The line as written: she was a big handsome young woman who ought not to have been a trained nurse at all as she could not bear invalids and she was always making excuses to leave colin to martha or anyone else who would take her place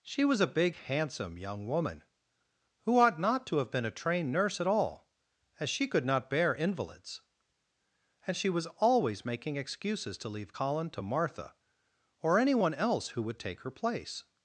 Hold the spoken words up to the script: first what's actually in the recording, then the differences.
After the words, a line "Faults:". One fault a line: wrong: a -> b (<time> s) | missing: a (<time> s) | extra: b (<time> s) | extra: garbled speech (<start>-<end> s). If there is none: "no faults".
she was a big handsome young woman who ought not to have been a trained nurse at all as she could not bear invalids and she was always making excuses to leave colin to martha or anyone else who would take her place
Faults:
no faults